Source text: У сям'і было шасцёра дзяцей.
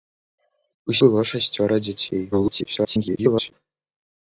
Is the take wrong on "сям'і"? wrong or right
wrong